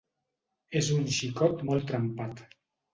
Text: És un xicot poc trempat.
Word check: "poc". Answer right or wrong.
wrong